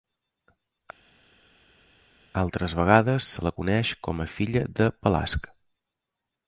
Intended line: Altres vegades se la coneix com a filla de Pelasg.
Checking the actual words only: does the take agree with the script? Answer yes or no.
yes